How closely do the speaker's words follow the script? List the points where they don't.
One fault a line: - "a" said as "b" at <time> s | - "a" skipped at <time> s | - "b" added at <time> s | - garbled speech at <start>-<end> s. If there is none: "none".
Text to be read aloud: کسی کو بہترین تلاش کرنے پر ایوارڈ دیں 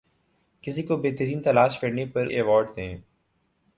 none